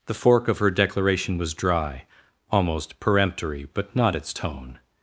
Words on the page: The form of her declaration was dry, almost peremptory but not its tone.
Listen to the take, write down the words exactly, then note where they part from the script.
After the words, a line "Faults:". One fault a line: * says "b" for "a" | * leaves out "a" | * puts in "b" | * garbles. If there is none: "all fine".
The fork of her declaration was dry, almost peremptory but not its tone.
Faults:
* says "fork" for "form"